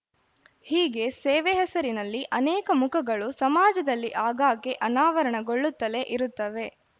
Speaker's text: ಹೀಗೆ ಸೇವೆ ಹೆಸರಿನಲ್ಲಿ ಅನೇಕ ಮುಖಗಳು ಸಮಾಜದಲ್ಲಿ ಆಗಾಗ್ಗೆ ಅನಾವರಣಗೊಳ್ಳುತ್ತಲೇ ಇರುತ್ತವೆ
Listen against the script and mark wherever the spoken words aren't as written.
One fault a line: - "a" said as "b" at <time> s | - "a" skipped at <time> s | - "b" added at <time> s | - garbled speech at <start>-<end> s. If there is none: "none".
none